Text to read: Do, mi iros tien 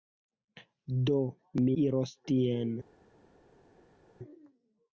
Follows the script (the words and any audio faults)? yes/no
yes